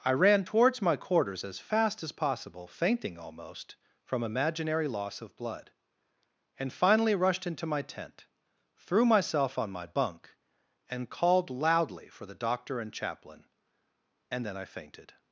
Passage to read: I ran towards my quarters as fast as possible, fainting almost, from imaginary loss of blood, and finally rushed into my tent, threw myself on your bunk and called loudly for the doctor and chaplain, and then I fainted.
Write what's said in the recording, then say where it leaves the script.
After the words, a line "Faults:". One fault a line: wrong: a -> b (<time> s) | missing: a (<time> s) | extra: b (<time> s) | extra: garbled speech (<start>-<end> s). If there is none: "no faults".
I ran towards my quarters as fast as possible, fainting almost, from imaginary loss of blood, and finally rushed into my tent, threw myself on my bunk and called loudly for the doctor and chaplain, and then I fainted.
Faults:
wrong: your -> my (9.7 s)